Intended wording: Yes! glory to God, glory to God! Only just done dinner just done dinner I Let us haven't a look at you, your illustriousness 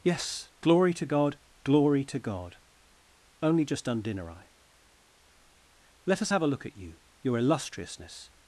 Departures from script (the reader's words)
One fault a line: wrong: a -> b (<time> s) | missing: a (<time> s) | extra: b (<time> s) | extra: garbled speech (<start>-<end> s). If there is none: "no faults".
missing: just done dinner (4.3 s)
wrong: haven't -> have (6.3 s)